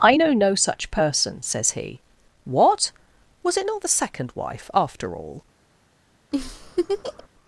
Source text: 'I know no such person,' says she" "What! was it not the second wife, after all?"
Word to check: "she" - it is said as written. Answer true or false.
false